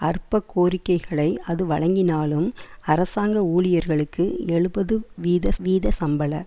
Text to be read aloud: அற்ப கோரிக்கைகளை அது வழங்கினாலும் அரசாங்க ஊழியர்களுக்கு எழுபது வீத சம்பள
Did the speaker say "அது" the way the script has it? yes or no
yes